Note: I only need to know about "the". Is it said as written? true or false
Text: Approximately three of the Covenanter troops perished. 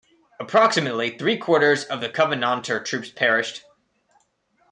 true